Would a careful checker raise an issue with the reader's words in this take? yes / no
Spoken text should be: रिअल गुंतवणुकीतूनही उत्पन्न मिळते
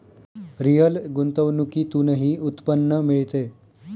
no